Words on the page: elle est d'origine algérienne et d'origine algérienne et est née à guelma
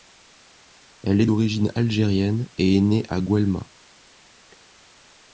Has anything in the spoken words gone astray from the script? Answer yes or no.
yes